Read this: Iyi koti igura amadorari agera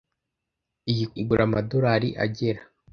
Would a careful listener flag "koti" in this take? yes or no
yes